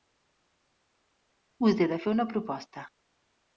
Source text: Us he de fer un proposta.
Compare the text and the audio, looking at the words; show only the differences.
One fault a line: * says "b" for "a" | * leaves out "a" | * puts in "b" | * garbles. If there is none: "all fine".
* says "una" for "un"